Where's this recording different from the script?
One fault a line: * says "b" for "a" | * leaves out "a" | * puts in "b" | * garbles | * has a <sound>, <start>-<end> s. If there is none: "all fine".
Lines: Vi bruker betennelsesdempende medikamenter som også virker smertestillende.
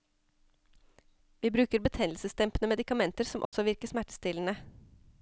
* has a dropout, 3.4-3.5 s